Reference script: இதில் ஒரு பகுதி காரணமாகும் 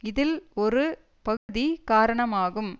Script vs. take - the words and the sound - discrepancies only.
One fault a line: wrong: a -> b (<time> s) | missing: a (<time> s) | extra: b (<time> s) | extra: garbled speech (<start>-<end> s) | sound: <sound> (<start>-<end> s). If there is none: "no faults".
sound: dropout (1.4-1.5 s)